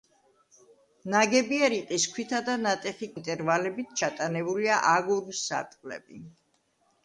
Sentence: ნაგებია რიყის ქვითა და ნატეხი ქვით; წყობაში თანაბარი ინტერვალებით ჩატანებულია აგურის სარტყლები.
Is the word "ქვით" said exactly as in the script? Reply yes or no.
no